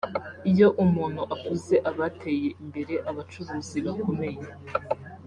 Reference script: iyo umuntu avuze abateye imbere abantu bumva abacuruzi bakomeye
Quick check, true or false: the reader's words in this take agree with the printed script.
false